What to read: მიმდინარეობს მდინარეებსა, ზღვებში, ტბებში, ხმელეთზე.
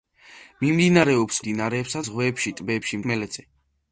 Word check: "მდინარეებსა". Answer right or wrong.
right